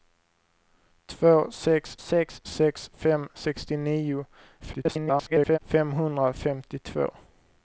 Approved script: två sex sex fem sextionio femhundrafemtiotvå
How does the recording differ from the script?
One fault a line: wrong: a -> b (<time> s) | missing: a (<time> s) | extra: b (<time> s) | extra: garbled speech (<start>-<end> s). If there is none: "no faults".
extra: sex (2.4 s)
extra: garbled speech (4.6-5.6 s)